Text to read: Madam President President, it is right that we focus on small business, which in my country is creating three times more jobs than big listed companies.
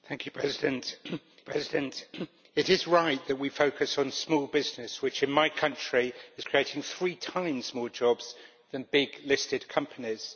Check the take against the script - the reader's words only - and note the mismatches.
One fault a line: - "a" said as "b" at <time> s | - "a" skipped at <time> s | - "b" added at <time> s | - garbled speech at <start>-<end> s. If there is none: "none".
none